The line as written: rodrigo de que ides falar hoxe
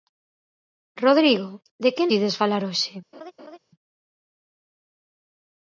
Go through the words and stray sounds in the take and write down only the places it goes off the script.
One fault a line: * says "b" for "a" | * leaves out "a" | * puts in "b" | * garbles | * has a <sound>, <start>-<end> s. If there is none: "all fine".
* has a laugh, 3.1-3.6 s